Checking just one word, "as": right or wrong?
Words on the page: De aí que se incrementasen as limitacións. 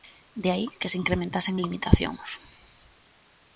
wrong